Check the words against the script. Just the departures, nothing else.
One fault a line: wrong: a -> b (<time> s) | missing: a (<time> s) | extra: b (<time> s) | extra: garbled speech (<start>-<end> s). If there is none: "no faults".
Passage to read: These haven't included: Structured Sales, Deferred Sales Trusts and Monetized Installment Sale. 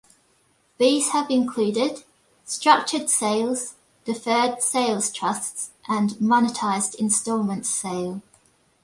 wrong: haven't -> have (1.1 s)